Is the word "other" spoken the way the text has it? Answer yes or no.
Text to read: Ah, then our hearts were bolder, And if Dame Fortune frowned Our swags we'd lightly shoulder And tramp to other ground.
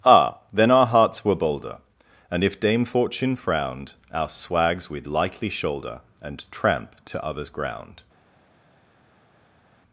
no